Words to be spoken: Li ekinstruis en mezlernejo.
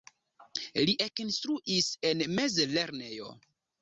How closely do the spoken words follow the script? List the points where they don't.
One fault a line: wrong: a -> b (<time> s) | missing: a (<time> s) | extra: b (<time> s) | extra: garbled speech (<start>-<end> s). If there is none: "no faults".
no faults